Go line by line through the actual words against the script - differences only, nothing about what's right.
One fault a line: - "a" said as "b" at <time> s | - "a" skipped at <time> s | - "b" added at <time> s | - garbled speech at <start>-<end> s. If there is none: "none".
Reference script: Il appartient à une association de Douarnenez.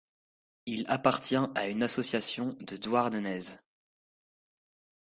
none